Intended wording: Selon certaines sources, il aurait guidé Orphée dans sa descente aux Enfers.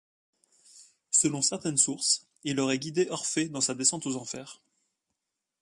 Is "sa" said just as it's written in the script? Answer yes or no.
yes